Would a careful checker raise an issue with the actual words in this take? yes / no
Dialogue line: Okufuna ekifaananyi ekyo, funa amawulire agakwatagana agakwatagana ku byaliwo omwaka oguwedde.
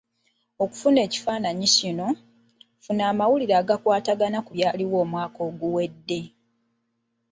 yes